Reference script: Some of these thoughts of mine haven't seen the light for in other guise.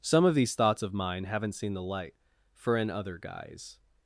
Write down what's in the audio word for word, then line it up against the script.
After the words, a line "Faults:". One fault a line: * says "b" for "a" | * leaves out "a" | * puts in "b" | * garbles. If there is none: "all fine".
Some of these thoughts of mine haven't seen the light for in other guise.
Faults:
all fine